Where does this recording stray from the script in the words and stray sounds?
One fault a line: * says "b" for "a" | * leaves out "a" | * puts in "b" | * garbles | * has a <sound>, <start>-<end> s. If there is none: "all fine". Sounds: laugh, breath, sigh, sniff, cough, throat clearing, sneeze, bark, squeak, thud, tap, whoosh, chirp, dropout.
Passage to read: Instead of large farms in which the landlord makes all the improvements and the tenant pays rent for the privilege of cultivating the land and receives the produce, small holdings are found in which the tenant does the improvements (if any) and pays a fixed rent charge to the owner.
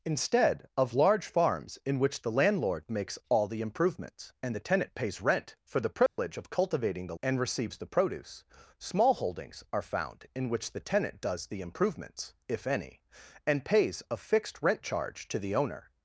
* has a dropout, 6.1-6.2 s
* leaves out "land"